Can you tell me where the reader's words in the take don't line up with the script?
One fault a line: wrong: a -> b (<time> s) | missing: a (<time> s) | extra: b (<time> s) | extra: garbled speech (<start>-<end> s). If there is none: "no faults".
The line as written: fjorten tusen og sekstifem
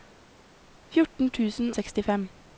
missing: og (1.7 s)